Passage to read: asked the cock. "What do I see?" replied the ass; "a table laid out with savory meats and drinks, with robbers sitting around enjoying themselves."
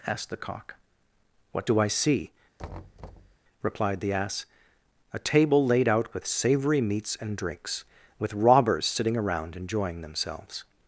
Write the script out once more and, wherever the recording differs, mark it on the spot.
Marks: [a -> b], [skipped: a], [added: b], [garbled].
asked the cock. "What do I see?" replied the ass; "a table laid out with savory meats and drinks, with robbers sitting around enjoying themselves."